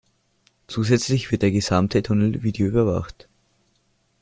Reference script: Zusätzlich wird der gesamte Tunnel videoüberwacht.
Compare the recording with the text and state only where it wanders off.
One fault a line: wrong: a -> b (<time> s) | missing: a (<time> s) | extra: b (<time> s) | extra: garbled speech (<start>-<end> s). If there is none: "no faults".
no faults